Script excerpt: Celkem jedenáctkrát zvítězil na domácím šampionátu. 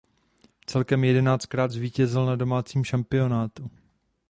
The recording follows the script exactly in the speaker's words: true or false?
true